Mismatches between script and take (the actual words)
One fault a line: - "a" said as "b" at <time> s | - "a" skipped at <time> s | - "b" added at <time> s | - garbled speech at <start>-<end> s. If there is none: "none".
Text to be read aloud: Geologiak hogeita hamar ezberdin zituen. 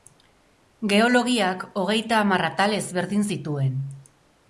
- "atal" added at 2.5 s